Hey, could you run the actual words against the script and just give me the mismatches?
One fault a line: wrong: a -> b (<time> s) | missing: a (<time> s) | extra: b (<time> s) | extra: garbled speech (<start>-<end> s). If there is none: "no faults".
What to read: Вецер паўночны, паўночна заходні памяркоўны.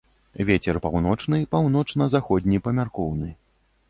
no faults